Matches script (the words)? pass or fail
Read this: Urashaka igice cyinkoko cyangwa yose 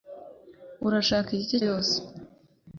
fail